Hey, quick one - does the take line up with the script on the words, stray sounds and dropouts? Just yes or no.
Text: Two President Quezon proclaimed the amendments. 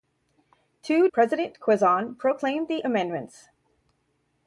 yes